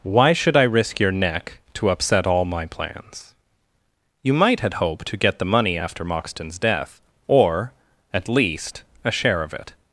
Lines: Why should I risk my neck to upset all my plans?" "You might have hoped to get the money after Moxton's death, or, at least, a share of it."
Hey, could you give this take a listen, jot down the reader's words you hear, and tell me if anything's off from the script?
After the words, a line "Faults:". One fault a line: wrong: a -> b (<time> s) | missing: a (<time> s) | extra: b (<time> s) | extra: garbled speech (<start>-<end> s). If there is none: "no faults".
Why should I risk your neck to upset all my plans?" "You might had hoped to get the money after Moxton's death, or, at least, a share of it."
Faults:
wrong: my -> your (1.0 s)
wrong: have -> had (4.6 s)